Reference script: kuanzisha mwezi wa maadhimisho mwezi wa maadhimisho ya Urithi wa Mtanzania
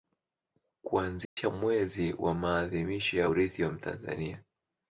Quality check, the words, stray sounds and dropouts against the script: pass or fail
fail